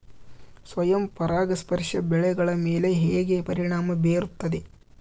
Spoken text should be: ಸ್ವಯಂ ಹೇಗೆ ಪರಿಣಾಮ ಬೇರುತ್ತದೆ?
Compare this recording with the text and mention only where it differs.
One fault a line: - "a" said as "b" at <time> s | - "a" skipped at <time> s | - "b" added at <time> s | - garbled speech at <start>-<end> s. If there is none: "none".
- "ಪರಾಗಸ್ಪರ್ಶ ಬೆಳೆಗಳ ಮೇಲೆ" added at 1.1 s